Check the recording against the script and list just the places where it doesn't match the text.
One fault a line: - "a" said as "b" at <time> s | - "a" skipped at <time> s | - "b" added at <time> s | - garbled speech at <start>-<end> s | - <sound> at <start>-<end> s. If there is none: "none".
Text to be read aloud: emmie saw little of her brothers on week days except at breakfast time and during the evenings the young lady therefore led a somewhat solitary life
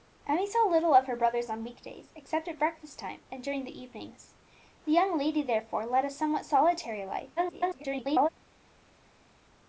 - garbled speech at 7.4-8.3 s